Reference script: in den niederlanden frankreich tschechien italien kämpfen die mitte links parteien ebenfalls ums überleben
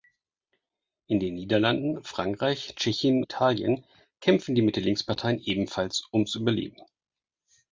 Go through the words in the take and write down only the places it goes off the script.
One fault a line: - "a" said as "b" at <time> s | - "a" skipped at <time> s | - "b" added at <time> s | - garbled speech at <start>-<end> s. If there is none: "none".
none